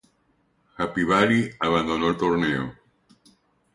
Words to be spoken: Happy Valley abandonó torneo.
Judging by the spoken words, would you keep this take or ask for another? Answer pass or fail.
fail